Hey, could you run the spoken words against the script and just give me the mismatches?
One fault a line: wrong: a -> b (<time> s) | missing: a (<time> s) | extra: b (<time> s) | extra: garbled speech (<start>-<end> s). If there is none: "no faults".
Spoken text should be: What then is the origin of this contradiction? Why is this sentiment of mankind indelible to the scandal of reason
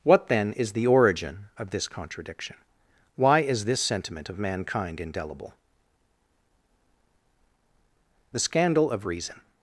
missing: to (5.5 s)